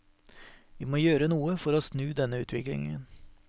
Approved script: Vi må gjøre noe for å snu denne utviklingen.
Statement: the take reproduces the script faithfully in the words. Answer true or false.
true